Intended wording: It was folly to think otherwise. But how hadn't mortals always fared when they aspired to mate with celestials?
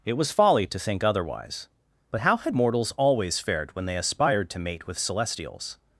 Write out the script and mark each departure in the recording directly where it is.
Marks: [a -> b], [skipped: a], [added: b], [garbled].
It was folly to think otherwise. But how [hadn't -> had] mortals always fared when they aspired to mate with celestials?